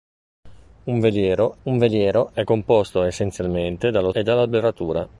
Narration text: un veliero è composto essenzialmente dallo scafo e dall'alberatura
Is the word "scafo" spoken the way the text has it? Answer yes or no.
no